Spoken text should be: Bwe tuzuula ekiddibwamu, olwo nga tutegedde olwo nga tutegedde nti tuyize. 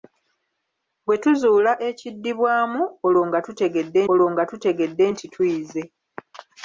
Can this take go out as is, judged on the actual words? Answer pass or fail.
pass